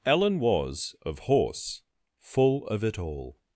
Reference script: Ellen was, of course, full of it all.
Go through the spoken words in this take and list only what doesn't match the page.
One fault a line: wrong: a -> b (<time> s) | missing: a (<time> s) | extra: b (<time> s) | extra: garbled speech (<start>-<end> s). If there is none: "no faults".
wrong: course -> horse (1.2 s)